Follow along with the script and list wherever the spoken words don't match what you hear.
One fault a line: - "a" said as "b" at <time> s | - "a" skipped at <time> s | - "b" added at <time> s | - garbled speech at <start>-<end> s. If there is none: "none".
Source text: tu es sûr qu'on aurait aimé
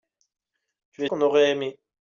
- "sûr" skipped at 1.1 s